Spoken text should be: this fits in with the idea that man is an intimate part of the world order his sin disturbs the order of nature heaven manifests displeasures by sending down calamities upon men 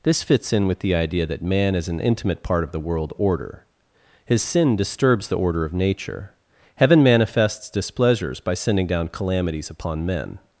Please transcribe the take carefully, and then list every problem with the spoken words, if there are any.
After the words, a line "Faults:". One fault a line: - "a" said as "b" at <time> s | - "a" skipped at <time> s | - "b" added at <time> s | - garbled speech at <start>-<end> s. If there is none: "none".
this fits in with the idea that man is an intimate part of the world order his sin disturbs the order of nature heaven manifests displeasures by sending down calamities upon men
Faults:
none